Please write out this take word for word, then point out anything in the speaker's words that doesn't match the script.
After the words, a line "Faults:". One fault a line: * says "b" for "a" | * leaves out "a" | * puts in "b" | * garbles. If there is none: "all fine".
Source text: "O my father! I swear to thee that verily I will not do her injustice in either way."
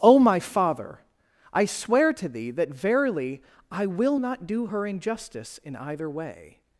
"O my father! I swear to thee that verily I will not do her injustice in either way."
Faults:
all fine